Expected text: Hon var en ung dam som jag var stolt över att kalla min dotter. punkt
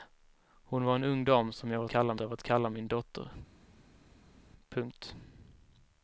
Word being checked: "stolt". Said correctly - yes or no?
no